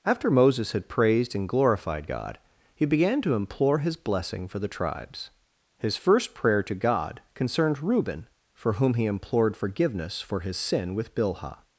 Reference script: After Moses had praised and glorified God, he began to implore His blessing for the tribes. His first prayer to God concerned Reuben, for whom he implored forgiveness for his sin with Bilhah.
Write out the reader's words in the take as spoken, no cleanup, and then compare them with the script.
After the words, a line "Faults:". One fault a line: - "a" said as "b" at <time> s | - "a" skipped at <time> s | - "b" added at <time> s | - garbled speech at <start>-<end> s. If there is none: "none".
After Moses had praised and glorified God, he began to implore His blessing for the tribes. His first prayer to God concerned Reuben, for whom he implored forgiveness for his sin with Bilhah.
Faults:
none